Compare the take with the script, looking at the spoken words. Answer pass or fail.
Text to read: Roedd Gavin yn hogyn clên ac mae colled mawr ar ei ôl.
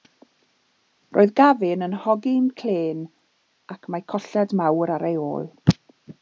pass